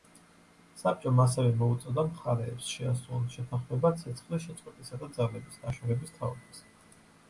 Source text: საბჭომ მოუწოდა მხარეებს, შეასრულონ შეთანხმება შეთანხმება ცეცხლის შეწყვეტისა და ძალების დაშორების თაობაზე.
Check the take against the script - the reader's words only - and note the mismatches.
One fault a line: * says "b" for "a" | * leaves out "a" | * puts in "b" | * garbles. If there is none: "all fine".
* puts in "ასევე"
* leaves out "შეთანხმება"